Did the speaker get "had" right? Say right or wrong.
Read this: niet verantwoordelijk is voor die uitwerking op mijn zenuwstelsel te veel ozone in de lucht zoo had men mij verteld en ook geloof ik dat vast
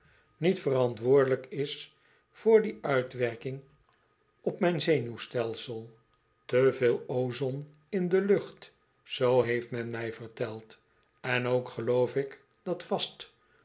wrong